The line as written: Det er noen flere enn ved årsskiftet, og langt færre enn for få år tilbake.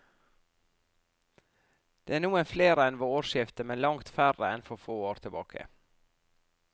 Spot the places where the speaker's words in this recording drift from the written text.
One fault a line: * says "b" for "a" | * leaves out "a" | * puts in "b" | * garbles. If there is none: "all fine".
* says "men" for "og"